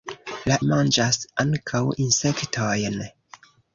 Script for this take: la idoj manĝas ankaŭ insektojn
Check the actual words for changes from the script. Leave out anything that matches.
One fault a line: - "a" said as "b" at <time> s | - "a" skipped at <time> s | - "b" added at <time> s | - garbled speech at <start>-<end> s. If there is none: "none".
- "idoj" skipped at 0.6 s